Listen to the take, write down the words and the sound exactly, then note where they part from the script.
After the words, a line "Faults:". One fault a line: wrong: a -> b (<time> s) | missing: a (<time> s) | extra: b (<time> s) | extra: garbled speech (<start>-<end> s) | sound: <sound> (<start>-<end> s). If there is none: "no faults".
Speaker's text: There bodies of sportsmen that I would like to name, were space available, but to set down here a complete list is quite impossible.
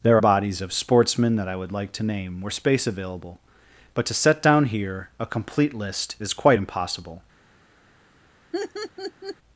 There bodies of sportsmen that I would like to name, were space available, but to set down here a complete list is quite impossible.
Faults:
sound: laugh (8.5-9.4 s)